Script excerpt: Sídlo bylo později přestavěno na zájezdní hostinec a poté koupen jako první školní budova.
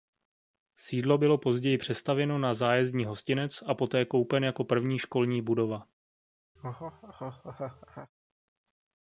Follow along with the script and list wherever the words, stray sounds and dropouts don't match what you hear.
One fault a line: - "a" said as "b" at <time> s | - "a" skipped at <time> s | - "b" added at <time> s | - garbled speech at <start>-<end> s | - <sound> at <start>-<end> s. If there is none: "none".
- laugh at 6.6-8.1 s